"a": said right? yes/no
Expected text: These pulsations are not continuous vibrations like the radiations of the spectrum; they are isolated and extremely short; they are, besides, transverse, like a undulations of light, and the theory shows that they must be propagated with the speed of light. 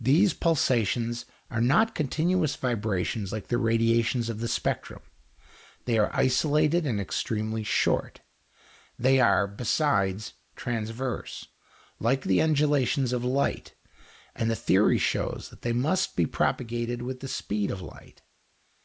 no